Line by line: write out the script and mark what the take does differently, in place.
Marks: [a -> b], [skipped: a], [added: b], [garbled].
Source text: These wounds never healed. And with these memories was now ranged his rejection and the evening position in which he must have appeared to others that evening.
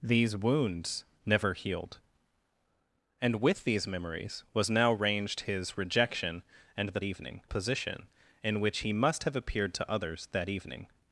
These wounds never healed. And with these memories was now ranged his rejection and the evening position in which he must have appeared to others that evening.